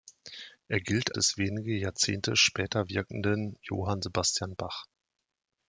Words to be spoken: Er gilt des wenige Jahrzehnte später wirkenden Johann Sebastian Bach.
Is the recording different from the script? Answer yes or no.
no